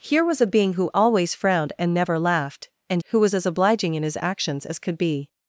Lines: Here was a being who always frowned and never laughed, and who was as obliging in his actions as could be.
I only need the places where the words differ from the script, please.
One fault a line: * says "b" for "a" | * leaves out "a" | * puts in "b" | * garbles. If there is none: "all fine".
all fine